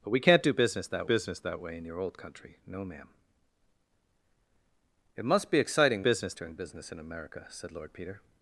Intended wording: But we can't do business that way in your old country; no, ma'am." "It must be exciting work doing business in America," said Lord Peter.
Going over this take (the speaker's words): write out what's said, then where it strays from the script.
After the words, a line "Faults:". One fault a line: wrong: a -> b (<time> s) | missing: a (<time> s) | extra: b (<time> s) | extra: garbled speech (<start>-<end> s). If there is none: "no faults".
But we can't do business that business that way in your old country; no, ma'am." "It must be exciting business doing business in America," said Lord Peter.
Faults:
extra: business that (1.0 s)
wrong: work -> business (6.0 s)